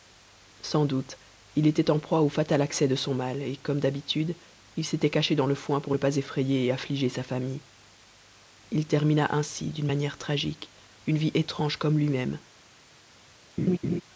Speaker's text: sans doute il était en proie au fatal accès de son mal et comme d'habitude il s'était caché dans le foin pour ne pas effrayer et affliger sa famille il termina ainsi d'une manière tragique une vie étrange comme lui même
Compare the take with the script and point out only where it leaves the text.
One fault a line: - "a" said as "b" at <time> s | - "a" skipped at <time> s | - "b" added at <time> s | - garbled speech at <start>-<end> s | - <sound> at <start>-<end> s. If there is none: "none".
- laugh at 13.6-14.0 s